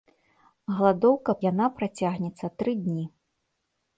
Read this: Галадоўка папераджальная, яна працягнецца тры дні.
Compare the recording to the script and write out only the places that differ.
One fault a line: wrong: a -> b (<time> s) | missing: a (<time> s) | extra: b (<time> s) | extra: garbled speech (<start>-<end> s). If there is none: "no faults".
missing: папераджальная (1.4 s)